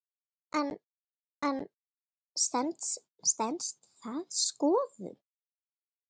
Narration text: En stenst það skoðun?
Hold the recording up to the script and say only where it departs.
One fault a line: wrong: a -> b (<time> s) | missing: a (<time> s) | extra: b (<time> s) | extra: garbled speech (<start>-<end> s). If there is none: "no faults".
extra: en (1.5 s)